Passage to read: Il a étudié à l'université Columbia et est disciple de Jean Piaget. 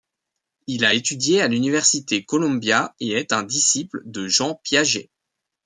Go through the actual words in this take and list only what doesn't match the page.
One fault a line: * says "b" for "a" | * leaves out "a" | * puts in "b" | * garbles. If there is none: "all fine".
* puts in "un"